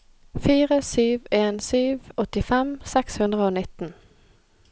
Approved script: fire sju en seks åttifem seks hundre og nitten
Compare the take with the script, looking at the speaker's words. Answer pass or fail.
fail